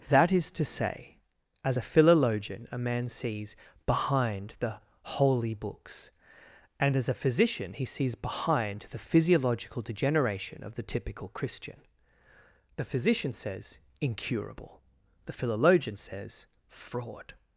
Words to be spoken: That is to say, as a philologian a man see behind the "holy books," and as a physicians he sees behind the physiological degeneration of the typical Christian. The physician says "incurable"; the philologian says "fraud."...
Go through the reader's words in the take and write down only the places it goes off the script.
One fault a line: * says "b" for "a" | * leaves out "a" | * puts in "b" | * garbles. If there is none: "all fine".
* says "sees" for "see"
* says "physician" for "physicians"